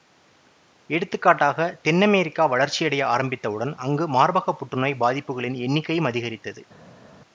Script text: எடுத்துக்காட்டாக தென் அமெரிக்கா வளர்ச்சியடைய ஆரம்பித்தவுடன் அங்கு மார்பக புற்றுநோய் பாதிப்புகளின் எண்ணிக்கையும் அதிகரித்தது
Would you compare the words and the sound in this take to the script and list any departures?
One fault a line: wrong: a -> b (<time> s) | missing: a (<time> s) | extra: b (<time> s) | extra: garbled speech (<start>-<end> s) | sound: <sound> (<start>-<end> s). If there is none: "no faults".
no faults